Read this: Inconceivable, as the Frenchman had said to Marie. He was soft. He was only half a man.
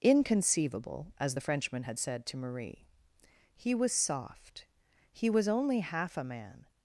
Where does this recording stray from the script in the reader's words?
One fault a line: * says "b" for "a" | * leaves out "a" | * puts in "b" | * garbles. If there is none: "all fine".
all fine